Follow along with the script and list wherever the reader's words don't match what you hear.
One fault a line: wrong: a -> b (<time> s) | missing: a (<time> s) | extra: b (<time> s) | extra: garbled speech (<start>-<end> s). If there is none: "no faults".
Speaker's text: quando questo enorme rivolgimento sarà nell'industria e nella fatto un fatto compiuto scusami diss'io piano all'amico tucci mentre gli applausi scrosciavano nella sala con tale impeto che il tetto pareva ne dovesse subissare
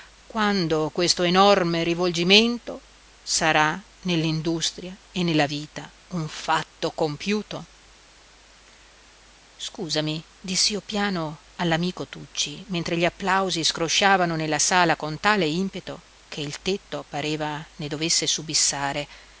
wrong: fatto -> vita (5.5 s)